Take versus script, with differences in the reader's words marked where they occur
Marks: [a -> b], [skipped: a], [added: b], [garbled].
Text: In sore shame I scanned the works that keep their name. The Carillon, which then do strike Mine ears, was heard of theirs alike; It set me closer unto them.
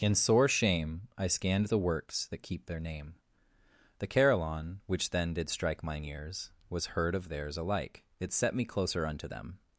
In sore shame I scanned the works that keep their name. The Carillon, which then [do -> did] strike Mine ears, was heard of theirs alike; It set me closer unto them.